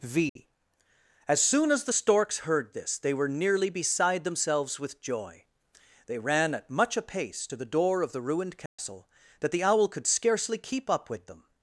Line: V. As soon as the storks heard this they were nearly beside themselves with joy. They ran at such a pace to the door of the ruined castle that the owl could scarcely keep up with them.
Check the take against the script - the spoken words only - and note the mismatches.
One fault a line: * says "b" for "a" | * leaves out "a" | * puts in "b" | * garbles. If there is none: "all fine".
* says "much" for "such"